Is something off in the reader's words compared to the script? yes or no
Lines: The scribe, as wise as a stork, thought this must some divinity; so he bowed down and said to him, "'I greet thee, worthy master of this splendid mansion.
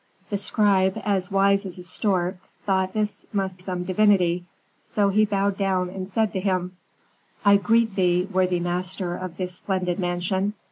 no